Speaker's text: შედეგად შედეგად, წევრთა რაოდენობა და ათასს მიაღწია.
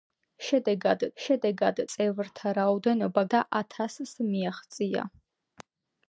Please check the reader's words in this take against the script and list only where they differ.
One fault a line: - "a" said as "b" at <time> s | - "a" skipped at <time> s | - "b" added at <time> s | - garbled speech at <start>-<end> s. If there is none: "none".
none